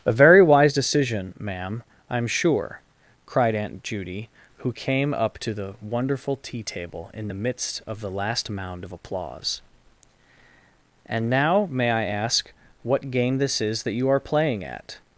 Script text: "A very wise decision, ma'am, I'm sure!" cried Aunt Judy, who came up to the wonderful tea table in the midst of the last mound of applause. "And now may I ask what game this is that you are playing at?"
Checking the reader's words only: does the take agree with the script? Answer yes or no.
yes